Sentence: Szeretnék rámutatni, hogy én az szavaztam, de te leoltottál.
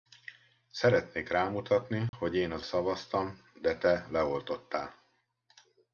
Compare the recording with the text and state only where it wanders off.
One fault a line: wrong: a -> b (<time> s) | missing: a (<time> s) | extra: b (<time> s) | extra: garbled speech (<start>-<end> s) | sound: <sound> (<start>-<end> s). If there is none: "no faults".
sound: dropout (2.1-2.1 s)